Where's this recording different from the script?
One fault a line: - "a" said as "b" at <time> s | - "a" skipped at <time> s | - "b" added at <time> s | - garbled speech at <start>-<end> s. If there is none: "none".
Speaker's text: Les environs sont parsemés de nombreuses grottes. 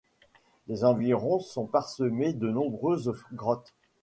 none